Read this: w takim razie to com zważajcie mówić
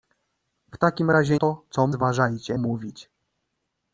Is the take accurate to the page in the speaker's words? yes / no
yes